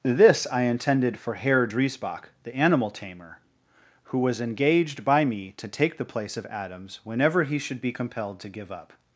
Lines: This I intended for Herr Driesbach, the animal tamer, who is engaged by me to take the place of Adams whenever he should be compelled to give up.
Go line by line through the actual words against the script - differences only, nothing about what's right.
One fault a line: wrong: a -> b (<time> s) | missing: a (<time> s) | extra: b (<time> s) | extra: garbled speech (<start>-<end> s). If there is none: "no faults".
wrong: is -> was (4.2 s)